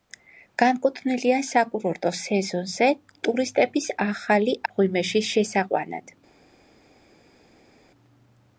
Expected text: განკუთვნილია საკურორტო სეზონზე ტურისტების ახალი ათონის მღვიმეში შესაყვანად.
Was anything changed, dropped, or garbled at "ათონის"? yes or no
yes